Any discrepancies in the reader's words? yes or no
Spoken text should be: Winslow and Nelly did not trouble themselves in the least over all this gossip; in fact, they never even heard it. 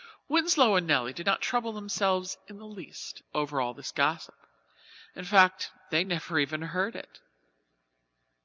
no